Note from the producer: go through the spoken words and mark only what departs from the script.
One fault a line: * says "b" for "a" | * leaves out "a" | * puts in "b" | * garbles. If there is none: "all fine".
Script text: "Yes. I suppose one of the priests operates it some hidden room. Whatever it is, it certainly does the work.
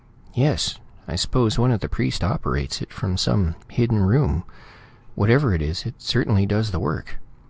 * puts in "from"